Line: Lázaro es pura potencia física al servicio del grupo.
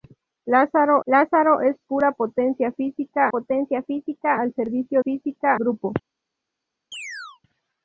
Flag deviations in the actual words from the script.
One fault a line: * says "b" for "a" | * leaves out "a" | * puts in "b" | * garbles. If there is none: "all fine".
* puts in "lázaro"
* puts in "potencia física"
* says "física" for "del"